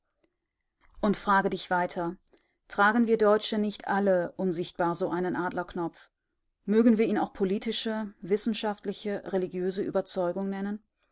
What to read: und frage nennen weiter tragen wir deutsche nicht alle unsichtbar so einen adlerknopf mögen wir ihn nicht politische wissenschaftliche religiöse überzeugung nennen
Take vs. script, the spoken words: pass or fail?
fail